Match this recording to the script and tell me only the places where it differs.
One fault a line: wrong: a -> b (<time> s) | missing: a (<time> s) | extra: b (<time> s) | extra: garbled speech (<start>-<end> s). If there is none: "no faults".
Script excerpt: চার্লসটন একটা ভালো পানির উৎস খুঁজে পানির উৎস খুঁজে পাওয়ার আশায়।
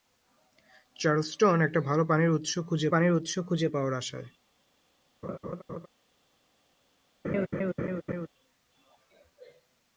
no faults